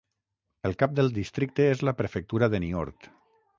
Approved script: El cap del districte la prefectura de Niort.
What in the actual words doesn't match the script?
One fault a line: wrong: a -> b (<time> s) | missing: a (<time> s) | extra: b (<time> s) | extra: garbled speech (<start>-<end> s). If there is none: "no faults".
extra: és (1.8 s)